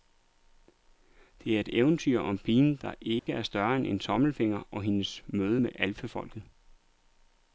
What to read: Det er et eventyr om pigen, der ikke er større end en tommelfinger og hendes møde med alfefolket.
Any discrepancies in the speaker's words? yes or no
no